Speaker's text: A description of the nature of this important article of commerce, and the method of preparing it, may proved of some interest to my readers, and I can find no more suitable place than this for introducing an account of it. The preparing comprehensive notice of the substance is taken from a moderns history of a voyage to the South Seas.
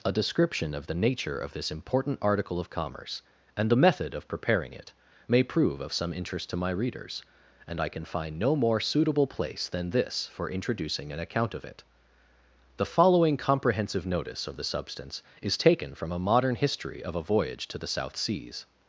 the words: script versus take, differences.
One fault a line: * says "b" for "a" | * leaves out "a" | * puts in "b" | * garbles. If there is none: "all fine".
* says "prove" for "proved"
* says "following" for "preparing"
* says "modern" for "moderns"